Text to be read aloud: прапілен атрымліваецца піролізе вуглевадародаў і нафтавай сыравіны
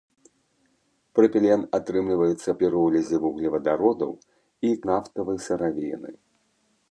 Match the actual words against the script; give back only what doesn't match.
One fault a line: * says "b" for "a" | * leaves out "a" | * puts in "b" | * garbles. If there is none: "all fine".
all fine